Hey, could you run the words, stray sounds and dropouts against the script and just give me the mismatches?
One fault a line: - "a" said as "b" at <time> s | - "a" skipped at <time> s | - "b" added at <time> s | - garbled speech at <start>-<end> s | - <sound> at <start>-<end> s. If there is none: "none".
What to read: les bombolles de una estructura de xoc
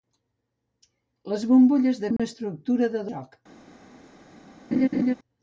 - dropout at 2.2-2.2 s
- laugh at 4.7-5.1 s